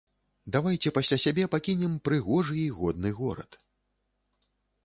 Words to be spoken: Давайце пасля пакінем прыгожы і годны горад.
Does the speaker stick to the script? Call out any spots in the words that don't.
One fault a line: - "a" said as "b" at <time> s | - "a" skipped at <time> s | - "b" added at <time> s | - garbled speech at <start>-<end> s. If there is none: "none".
- "сябе" added at 1.2 s